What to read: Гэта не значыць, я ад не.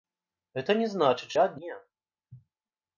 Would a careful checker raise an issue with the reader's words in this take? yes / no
no